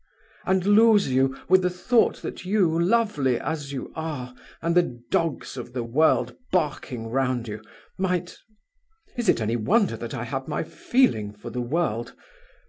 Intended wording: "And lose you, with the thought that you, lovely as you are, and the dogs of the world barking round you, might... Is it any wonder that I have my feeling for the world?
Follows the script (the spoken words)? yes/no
yes